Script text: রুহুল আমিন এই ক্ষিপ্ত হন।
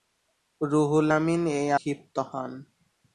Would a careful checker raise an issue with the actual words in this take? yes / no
no